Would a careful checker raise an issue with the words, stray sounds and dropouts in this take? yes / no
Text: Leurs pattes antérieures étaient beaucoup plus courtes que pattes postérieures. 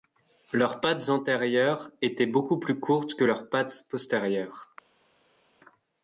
yes